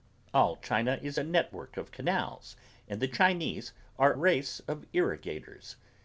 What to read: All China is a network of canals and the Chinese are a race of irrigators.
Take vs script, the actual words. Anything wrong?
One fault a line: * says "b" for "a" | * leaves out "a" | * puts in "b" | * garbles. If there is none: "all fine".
* leaves out "a"